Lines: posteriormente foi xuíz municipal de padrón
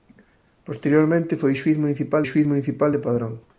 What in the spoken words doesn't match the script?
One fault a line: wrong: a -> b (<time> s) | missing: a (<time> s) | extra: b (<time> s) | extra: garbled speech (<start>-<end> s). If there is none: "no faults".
extra: xuíz municipal (2.2 s)